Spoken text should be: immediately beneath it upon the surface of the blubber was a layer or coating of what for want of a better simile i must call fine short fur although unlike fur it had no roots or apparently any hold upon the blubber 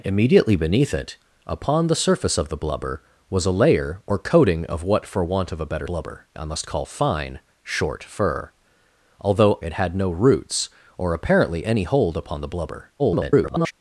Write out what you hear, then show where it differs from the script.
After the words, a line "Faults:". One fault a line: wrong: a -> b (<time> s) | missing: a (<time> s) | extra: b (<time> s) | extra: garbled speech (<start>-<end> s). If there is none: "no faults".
immediately beneath it upon the surface of the blubber was a layer or coating of what for want of a better blubber i must call fine short fur although it had no roots or apparently any hold upon the blubber [garbled]
Faults:
wrong: simile -> blubber (5.8 s)
missing: unlike fur (9.6 s)
extra: garbled speech (13.0-13.7 s)